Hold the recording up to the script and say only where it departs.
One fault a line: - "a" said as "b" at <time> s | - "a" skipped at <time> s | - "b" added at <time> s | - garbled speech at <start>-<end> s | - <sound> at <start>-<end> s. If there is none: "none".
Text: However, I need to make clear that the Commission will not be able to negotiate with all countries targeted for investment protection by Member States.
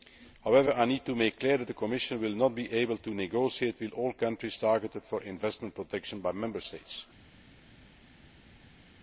none